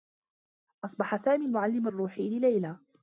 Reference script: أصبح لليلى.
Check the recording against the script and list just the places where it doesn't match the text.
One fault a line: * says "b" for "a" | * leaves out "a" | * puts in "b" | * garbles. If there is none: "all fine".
* puts in "سامي المعلّم الرّوحي"